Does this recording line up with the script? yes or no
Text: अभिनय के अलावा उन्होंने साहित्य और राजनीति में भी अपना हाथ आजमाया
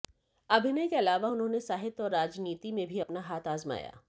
yes